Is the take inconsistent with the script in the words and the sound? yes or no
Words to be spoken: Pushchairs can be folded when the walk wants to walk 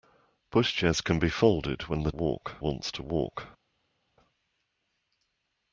no